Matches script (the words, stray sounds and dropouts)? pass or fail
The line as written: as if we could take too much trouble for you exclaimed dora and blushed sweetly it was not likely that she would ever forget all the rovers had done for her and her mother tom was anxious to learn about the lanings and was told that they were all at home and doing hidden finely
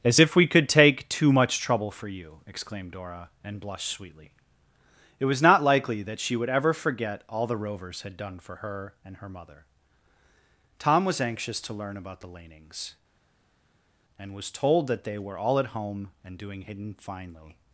pass